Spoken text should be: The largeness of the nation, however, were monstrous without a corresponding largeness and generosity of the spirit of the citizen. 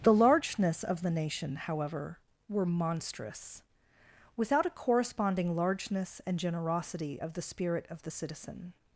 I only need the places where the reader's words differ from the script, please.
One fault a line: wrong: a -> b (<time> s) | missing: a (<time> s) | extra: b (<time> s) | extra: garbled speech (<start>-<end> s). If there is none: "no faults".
no faults